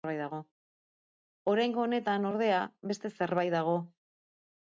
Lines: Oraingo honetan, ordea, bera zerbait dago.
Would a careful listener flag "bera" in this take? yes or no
yes